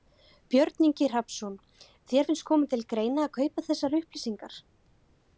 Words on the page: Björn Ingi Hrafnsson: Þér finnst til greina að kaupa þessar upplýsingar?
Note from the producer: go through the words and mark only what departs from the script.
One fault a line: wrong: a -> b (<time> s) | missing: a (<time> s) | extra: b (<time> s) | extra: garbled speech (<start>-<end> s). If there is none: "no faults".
extra: koma (2.5 s)